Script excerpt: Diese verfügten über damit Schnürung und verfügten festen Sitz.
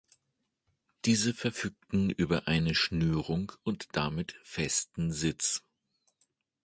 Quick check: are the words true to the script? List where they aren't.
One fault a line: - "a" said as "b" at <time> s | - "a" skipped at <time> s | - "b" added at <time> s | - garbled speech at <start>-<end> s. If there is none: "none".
- "damit" said as "eine" at 2.5 s
- "verfügten" said as "damit" at 4.0 s